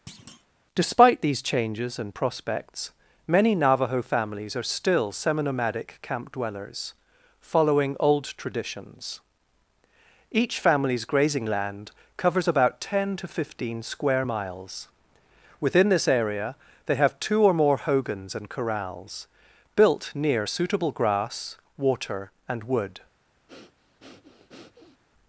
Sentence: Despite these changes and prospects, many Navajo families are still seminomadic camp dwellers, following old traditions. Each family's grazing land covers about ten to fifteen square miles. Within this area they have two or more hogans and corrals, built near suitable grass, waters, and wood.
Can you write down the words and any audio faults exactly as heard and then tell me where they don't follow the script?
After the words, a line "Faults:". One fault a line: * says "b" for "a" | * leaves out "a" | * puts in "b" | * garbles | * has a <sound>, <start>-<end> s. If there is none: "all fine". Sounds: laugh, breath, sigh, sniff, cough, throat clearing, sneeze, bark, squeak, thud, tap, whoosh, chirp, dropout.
Despite these changes and prospects, many Navajo families are still seminomadic camp dwellers, following old traditions. Each family's grazing land covers about ten to fifteen square miles. Within this area they have two or more hogans and corrals, built near suitable grass, water, and wood.
Faults:
* has a thud, 0.1-0.5 s
* says "water" for "waters"
* has a breath, 23.5-25.0 s